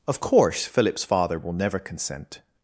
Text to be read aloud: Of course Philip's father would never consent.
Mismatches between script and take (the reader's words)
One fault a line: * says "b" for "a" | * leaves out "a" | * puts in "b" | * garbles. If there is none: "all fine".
* says "will" for "would"